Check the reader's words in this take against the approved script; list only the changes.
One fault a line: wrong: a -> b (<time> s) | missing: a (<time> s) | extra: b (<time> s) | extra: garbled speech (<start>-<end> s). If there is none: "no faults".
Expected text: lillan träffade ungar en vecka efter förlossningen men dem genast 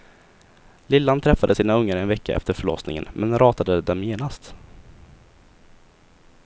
extra: sina (1.5 s)
extra: ratade (3.4 s)